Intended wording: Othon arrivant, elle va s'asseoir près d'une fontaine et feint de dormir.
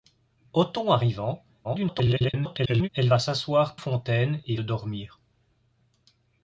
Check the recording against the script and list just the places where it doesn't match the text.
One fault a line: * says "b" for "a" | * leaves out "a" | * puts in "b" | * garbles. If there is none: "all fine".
* garbles
* leaves out "près d'une"
* leaves out "feint"